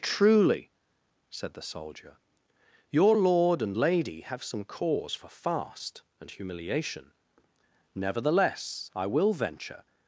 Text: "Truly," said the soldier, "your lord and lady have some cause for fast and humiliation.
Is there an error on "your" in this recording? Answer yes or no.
no